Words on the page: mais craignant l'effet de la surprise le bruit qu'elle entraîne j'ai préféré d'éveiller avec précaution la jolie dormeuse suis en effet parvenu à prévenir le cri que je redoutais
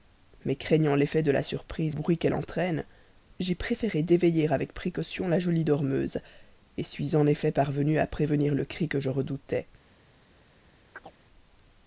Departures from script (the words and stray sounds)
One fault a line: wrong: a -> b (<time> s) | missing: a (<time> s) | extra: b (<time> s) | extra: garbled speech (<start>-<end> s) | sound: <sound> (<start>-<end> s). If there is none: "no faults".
missing: le (2.0 s)
sound: chirp (10.9-11.1 s)